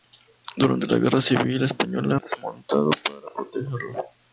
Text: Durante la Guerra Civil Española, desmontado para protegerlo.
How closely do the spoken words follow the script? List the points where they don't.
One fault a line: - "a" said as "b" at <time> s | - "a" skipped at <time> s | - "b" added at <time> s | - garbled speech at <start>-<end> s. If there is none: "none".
none